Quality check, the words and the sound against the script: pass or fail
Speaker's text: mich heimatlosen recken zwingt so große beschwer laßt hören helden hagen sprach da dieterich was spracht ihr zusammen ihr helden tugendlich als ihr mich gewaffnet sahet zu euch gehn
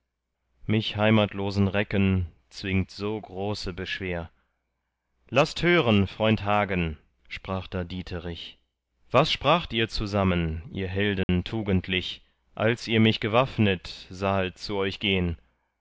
fail